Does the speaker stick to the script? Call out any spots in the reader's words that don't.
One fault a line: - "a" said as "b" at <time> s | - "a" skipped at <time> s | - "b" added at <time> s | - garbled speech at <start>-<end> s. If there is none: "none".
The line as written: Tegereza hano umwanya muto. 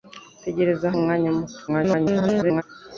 - "hano" skipped at 0.9 s
- garbled speech at 1.7-2.6 s